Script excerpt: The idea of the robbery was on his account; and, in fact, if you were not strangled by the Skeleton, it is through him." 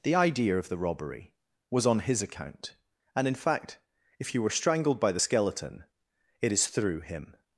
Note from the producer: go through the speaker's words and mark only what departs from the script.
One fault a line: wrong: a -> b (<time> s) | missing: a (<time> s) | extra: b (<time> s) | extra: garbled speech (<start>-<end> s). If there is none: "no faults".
missing: not (4.5 s)